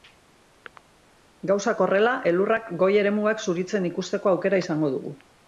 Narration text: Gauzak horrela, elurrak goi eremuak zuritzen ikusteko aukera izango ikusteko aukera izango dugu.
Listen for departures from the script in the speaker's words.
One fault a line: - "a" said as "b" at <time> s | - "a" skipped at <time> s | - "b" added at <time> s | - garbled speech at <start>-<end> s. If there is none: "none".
- "ikusteko aukera izango" skipped at 5.0 s